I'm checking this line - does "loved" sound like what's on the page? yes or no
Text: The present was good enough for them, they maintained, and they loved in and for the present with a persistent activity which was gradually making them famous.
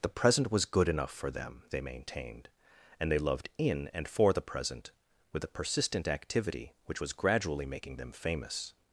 yes